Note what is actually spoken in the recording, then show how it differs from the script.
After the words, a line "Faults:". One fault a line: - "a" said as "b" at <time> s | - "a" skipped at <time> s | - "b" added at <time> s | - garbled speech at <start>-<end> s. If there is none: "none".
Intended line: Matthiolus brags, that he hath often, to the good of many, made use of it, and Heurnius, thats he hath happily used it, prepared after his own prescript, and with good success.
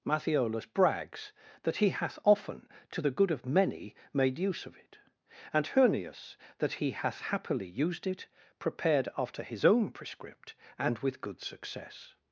Matthiolus brags, that he hath often, to the good of many, made use of it, and Heurnius, that he hath happily used it, prepared after his own prescript, and with good success.
Faults:
- "thats" said as "that" at 6.6 s